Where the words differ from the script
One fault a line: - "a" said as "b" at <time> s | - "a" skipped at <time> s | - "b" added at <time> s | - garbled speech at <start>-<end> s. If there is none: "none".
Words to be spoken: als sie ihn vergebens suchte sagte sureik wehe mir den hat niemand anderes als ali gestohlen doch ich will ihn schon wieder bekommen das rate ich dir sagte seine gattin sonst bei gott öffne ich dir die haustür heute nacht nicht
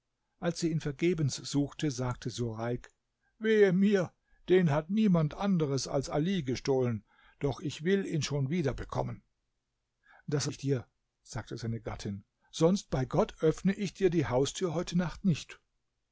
- "rate" skipped at 10.5 s